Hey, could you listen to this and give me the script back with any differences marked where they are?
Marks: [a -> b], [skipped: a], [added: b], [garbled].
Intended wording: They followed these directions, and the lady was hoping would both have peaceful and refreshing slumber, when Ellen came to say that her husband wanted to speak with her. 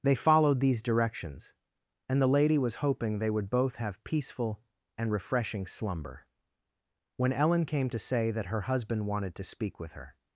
They followed these directions, and the lady was hoping [added: they] would both have peaceful and refreshing slumber, when Ellen came to say that her husband wanted to speak with her.